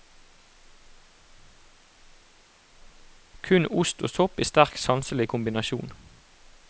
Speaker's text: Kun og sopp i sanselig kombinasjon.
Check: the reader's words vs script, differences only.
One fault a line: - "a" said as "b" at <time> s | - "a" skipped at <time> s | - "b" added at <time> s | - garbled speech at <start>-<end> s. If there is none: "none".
- "ost" added at 3.7 s
- "sterk" added at 4.4 s